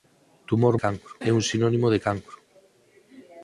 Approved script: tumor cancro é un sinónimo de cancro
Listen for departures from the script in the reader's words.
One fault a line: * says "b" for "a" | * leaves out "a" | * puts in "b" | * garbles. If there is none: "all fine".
all fine